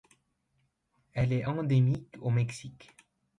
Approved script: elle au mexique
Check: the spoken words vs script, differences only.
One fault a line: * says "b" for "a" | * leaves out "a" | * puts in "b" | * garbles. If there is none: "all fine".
* puts in "est endémique"